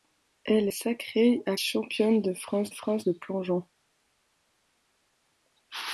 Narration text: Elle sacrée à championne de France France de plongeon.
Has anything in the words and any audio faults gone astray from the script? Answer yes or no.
no